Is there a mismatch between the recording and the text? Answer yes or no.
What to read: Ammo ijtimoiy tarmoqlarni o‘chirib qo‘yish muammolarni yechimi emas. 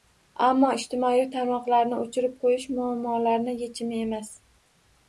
no